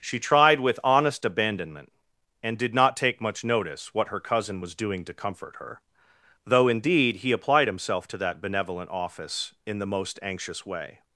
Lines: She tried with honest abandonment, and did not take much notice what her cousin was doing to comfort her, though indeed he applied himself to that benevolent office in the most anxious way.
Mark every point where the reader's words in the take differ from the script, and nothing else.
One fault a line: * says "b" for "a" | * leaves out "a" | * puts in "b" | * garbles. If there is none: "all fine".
all fine